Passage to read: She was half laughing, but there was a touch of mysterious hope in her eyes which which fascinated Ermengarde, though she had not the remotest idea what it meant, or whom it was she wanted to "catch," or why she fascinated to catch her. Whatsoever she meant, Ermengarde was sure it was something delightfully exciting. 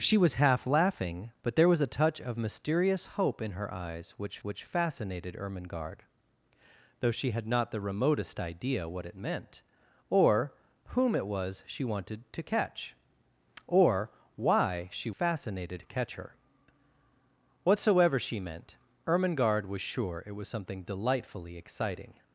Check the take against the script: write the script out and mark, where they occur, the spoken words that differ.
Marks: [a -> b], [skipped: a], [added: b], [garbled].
She was half laughing, but there was a touch of mysterious hope in her eyes which which fascinated Ermengarde, though she had not the remotest idea what it meant, or whom it was she wanted to "catch," or why she fascinated to catch her. Whatsoever she meant, Ermengarde was sure it was something delightfully exciting.